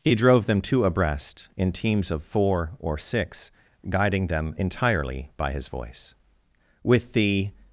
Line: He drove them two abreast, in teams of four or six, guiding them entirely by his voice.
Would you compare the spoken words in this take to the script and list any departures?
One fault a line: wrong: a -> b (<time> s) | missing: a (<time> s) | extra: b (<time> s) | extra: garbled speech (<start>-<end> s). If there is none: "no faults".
extra: With the (6.8 s)